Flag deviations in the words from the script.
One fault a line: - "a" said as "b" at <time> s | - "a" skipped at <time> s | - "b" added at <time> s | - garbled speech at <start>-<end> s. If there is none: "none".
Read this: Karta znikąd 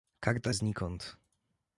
none